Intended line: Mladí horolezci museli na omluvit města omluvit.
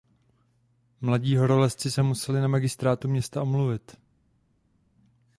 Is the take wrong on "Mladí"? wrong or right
right